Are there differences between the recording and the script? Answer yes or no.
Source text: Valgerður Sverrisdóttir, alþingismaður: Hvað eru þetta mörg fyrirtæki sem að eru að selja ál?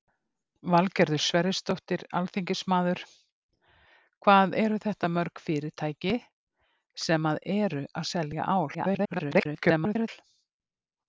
yes